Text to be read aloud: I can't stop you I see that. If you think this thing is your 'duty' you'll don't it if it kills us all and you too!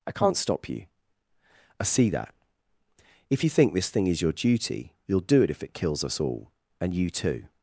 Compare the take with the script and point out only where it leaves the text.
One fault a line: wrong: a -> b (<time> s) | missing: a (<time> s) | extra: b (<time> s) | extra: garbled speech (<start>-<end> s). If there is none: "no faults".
wrong: don't -> do (5.2 s)